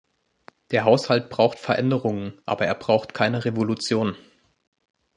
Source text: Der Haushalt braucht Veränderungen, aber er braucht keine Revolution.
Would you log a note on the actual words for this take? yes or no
no